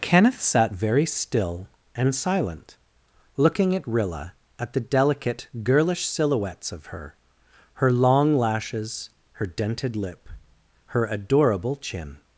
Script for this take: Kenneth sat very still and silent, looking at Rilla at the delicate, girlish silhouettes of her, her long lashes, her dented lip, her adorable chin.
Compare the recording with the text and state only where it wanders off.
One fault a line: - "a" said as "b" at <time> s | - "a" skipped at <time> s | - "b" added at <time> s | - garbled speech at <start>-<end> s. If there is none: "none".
none